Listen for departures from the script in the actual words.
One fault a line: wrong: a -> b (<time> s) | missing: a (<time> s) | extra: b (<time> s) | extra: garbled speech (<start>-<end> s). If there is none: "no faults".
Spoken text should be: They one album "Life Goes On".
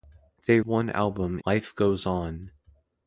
no faults